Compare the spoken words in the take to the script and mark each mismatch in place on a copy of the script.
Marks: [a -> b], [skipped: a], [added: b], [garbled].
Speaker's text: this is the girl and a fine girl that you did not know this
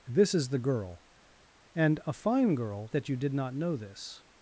this is the girl and a fine girl that you did not know this